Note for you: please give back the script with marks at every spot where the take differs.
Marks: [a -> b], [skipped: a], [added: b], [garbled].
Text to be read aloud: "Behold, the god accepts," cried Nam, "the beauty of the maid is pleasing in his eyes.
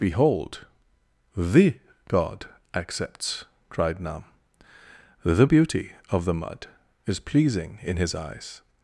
"Behold, the god accepts," cried Nam, "the beauty of the [maid -> mud] is pleasing in his eyes.